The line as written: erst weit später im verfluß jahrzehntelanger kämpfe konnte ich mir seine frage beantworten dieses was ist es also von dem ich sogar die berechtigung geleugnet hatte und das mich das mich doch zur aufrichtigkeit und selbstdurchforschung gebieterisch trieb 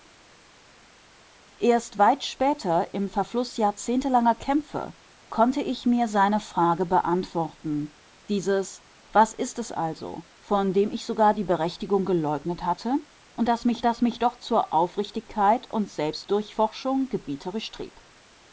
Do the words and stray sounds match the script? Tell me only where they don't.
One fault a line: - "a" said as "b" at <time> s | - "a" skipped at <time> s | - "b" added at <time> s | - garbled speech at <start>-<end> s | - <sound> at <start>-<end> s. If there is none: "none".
none